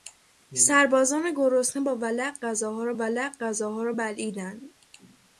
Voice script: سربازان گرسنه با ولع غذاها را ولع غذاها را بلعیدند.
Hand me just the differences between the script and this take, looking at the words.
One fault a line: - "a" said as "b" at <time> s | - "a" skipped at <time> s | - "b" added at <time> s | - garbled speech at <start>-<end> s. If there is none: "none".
none